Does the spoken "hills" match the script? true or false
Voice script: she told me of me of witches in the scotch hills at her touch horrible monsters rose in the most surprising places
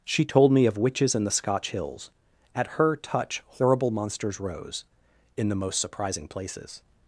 true